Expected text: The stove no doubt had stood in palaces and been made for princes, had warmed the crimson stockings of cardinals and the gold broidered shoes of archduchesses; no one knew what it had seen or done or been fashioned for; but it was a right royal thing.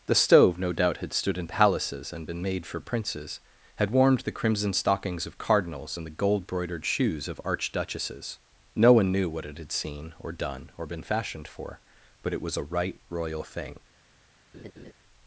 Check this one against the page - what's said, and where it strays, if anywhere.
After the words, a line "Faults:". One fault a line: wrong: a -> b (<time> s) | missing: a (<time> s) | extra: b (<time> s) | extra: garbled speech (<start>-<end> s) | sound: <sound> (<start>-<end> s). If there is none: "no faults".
The stove no doubt had stood in palaces and been made for princes, had warmed the crimson stockings of cardinals and the gold broidered shoes of archduchesses; no one knew what it had seen or done or been fashioned for; but it was a right royal thing.
Faults:
sound: laugh (14.5-14.9 s)